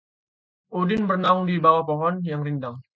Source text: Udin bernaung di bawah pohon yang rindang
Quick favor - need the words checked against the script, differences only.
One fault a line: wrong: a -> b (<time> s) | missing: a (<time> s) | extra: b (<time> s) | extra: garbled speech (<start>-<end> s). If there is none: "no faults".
no faults